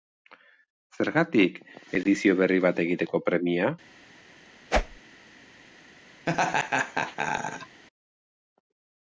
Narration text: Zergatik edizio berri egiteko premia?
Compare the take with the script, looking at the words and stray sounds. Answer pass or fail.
fail